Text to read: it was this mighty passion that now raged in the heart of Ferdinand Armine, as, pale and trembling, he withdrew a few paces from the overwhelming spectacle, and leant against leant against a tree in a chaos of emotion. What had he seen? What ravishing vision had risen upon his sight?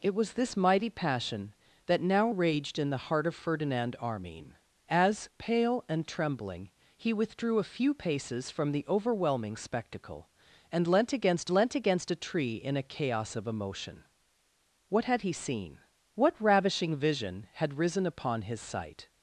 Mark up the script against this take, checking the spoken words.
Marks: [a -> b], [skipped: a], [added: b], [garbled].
it was this mighty passion that now raged in the heart of Ferdinand Armine, as, pale and trembling, he withdrew a few paces from the overwhelming spectacle, and leant against leant against a tree in a chaos of emotion. What had he seen? What ravishing vision had risen upon his sight?